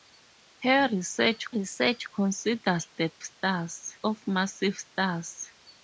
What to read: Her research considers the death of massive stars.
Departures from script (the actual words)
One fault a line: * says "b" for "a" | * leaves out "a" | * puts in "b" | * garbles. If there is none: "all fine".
* puts in "research"
* says "stars" for "death"